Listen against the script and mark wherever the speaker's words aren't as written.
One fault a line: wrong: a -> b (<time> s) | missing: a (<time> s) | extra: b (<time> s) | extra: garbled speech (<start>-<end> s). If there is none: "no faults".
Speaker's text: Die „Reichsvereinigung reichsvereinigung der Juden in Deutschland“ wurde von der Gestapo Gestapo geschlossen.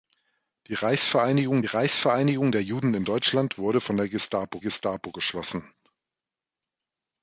no faults